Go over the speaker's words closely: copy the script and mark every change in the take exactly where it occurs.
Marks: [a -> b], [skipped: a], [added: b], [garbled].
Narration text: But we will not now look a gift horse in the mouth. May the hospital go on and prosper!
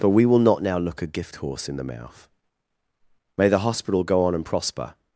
But we will not now look a gift horse in the mouth. May the hospital go on and prosper!